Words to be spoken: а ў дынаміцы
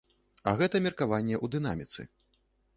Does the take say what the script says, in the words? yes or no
no